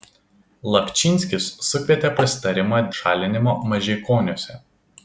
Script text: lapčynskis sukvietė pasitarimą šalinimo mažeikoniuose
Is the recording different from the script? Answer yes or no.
no